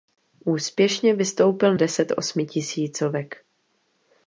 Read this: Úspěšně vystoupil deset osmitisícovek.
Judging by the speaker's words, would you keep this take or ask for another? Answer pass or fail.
pass